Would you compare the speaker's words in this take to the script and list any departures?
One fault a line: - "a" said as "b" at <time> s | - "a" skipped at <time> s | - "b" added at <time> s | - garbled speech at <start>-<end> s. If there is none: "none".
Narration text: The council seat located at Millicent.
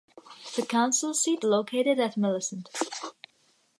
none